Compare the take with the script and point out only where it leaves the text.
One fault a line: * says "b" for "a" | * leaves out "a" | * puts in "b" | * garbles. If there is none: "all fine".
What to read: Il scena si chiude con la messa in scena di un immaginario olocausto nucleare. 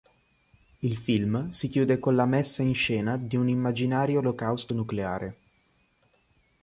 * says "film" for "scena"